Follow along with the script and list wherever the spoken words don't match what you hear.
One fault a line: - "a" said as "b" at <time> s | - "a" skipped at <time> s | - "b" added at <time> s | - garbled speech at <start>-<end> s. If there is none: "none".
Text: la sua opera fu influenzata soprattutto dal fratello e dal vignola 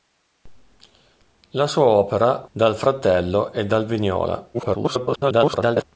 - "fu influenzata soprattutto" skipped at 2.5 s
- garbled speech at 4.5-5.8 s